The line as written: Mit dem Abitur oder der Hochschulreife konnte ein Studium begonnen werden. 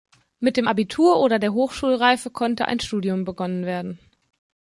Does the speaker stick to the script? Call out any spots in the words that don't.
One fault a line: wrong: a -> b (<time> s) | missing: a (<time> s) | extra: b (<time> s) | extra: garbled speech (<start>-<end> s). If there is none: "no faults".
no faults